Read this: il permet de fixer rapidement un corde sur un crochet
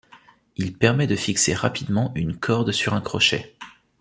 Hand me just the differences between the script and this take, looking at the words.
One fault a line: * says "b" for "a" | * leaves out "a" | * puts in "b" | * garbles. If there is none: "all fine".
* says "une" for "un"